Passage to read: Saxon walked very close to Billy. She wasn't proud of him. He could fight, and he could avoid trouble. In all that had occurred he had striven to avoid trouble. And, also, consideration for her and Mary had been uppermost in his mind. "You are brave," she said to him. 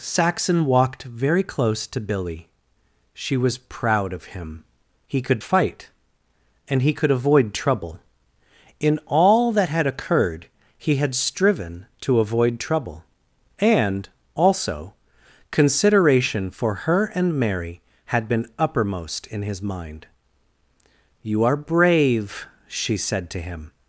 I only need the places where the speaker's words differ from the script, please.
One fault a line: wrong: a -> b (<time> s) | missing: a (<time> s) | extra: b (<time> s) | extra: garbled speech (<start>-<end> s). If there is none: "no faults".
wrong: wasn't -> was (3.4 s)